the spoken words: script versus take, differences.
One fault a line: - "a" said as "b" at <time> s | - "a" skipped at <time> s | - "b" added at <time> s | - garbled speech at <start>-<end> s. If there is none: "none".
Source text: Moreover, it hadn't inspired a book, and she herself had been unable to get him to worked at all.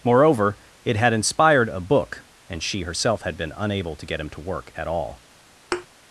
- "hadn't" said as "had" at 0.9 s
- "worked" said as "work" at 4.4 s